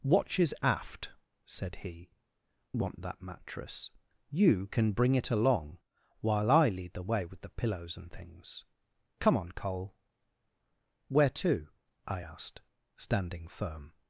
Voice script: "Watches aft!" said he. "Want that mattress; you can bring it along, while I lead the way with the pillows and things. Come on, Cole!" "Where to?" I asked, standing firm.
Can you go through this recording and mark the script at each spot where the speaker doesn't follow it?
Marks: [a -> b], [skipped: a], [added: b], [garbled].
"Watches aft!" said he. "Want that mattress; you can bring it along, while I lead the way with the pillows and things. Come on, Cole!" "Where to?" I asked, standing firm.